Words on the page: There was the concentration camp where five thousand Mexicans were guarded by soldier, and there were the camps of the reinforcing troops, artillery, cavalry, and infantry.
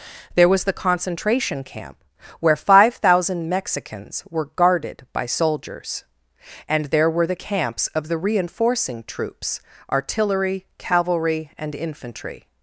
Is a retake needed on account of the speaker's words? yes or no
yes